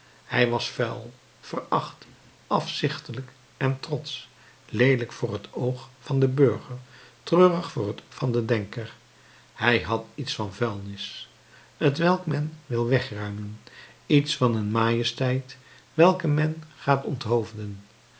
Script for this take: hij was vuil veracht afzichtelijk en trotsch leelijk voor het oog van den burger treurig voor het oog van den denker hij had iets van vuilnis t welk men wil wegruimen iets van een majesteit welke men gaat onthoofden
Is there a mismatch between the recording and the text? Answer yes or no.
yes